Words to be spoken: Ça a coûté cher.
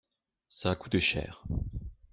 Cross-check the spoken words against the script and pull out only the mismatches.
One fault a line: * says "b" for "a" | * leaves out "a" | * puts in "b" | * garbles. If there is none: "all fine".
all fine